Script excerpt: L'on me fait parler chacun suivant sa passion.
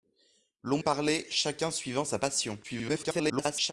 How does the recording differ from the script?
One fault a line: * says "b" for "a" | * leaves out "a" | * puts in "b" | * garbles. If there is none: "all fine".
* leaves out "me fait"
* garbles